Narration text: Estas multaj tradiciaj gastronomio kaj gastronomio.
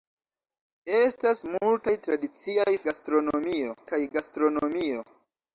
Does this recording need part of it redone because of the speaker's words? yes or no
no